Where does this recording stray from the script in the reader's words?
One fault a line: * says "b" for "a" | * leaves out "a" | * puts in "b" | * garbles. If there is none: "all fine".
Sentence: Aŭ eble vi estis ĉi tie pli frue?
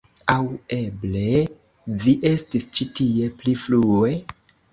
all fine